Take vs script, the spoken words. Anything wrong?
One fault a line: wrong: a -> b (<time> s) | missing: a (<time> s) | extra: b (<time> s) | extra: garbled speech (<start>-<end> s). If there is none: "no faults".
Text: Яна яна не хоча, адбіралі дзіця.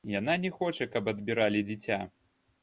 missing: яна (0.3 s)
extra: каб (0.9 s)